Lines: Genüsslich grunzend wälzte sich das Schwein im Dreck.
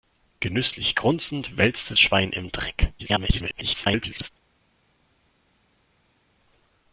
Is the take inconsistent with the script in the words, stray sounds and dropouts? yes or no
yes